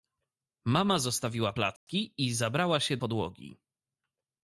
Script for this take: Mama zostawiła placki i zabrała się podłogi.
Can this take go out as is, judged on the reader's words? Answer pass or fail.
pass